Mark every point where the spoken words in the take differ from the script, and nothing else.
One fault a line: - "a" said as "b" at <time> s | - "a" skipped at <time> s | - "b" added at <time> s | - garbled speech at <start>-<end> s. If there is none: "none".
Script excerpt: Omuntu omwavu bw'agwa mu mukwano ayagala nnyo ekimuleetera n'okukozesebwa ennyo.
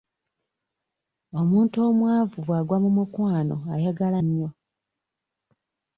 - "nnyo ekimuleetera n'okukozesebwa" skipped at 4.2 s